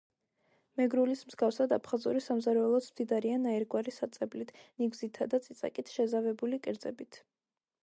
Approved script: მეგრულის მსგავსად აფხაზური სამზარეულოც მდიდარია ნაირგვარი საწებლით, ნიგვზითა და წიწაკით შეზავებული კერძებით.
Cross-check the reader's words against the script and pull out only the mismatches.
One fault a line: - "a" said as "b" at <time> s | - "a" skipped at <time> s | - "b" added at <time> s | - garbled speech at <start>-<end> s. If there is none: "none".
none